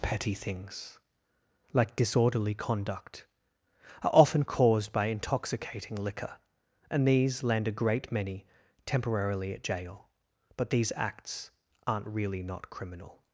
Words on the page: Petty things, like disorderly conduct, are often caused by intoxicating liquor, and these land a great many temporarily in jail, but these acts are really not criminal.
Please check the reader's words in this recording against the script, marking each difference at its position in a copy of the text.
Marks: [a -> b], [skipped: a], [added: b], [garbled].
Petty things, like disorderly conduct, are often caused by intoxicating liquor, and these land a great many temporarily [in -> at] jail, but these acts [are -> aren't] really not criminal.